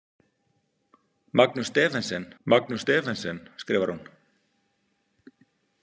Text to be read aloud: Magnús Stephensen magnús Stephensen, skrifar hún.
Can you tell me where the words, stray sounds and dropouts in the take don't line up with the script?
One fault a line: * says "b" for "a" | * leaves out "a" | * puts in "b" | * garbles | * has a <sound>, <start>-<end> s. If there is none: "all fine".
all fine